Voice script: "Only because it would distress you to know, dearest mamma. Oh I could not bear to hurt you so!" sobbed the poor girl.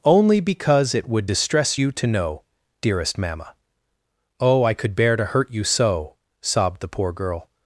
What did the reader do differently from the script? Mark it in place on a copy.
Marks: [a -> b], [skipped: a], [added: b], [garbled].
"Only because it would distress you to know, dearest mamma. Oh I could [skipped: not] bear to hurt you so!" sobbed the poor girl.